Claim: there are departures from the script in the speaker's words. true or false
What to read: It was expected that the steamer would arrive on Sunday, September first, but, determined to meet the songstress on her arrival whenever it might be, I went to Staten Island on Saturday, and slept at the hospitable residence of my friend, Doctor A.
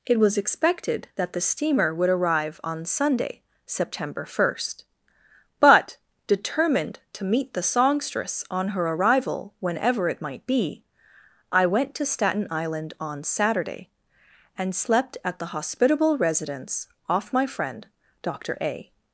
true